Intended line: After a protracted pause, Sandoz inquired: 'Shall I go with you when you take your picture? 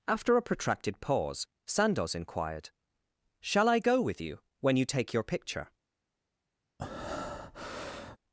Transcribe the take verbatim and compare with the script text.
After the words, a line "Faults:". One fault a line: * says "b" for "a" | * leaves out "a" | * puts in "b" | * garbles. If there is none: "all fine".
After a protracted pause, Sandoz inquired: 'Shall I go with you when you take your picture?
Faults:
all fine